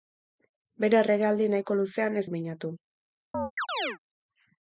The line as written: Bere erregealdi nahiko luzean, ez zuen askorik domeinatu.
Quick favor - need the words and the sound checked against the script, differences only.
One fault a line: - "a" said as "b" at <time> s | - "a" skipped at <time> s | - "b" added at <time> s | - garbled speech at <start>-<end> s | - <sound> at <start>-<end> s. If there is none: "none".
- "zuen askorik" skipped at 2.2 s
- chirp at 3.3-4.0 s